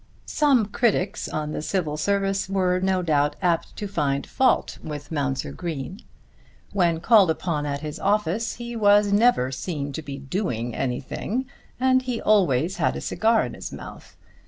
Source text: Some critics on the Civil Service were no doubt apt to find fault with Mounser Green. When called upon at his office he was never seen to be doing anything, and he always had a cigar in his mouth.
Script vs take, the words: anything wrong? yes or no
no